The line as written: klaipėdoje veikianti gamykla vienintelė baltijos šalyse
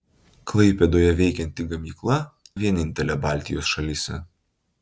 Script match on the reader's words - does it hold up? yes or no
yes